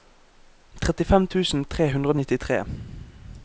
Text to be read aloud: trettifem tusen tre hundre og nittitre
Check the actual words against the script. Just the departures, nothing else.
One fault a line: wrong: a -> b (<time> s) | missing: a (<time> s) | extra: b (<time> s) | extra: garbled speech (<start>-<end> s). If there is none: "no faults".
no faults